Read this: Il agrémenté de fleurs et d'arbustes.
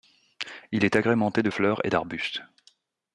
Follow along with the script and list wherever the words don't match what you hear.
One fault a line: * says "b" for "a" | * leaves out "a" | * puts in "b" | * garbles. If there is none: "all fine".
* puts in "est"